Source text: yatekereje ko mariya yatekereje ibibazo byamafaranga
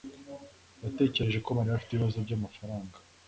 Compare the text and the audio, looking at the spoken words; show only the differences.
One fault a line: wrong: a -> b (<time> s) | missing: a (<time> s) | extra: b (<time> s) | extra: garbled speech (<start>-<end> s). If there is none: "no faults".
wrong: yatekereje -> afite (1.8 s)